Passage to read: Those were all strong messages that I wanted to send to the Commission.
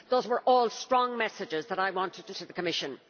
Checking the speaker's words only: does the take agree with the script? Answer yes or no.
no